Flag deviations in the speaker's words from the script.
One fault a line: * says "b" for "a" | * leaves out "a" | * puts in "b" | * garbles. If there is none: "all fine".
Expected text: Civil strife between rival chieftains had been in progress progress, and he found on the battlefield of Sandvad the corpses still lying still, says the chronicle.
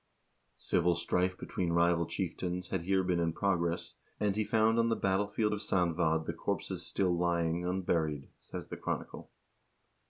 * puts in "here"
* leaves out "progress"
* says "unburied" for "still"